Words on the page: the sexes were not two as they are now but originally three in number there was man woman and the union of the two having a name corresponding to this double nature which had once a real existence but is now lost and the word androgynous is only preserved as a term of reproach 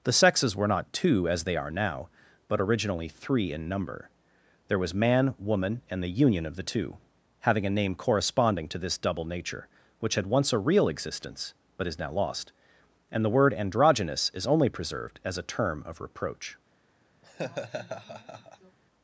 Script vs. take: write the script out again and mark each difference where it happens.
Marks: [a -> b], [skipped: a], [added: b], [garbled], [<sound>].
the sexes were not two as they are now but originally three in number there was man woman and the union of the two having a name corresponding to this double nature which had once a real existence but is now lost and the word androgynous is only preserved as a term of reproach [laugh]